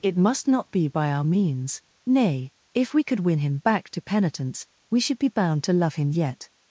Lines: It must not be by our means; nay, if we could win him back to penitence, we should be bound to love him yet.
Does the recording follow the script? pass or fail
pass